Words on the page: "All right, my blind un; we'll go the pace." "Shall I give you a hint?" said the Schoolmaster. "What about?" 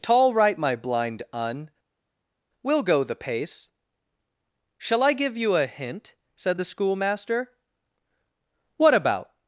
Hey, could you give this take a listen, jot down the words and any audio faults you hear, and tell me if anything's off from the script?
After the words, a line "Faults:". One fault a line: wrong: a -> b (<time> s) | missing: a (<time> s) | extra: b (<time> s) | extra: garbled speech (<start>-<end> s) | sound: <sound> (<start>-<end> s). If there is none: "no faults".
"Tall right, my blind un; we'll go the pace." "Shall I give you a hint?" said the Schoolmaster. "What about?"
Faults:
wrong: All -> Tall (0.0 s)